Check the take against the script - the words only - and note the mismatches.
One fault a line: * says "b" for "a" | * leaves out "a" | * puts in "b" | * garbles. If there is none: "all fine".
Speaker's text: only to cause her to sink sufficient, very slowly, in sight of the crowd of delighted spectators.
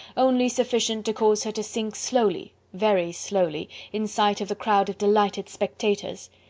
* puts in "sufficient"
* says "slowly" for "sufficient"